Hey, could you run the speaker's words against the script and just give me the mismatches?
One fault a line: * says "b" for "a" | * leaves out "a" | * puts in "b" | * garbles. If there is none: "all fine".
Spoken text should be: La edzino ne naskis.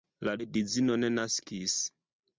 all fine